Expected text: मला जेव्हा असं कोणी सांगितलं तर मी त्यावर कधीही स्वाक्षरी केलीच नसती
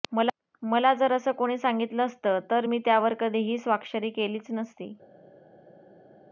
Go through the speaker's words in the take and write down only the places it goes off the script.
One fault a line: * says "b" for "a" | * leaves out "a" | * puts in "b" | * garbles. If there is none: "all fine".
* says "जर" for "जेव्हा"
* puts in "असतं"